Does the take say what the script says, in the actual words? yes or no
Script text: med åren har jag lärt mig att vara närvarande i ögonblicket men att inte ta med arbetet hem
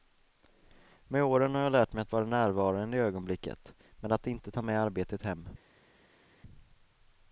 yes